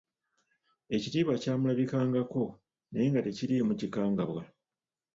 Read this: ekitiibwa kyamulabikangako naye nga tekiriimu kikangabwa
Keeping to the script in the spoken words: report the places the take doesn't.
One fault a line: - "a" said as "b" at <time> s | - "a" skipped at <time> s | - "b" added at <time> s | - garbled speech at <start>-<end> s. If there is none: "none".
none